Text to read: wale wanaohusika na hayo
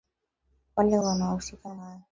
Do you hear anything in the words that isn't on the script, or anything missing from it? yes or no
no